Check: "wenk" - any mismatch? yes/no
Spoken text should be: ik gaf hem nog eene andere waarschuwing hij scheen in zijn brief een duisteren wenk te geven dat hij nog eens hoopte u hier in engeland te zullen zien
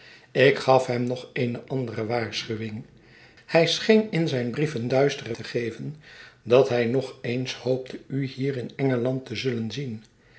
yes